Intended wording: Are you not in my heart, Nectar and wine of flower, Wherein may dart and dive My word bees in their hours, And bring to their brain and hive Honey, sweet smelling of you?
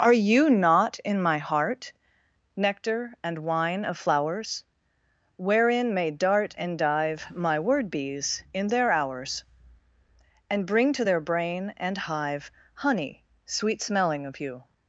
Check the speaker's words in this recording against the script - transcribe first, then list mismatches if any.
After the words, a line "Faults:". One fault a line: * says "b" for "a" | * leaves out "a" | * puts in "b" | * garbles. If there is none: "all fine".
Are you not in my heart, Nectar and wine of flowers, Wherein may dart and dive My word bees in their hours, And bring to their brain and hive Honey, sweet smelling of you?
Faults:
* says "flowers" for "flower"